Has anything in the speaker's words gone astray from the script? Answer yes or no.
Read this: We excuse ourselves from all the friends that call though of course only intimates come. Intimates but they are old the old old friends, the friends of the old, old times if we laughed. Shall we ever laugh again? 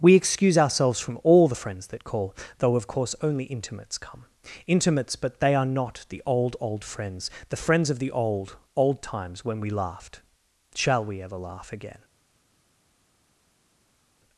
yes